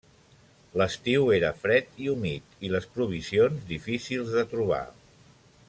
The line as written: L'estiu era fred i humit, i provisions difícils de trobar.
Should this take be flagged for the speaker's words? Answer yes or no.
yes